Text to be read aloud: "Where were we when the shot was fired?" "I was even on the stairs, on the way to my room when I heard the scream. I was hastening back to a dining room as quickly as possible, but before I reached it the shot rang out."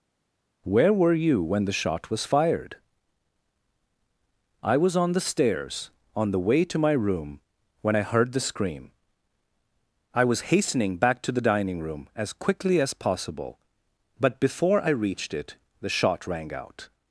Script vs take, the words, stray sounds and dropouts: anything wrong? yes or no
yes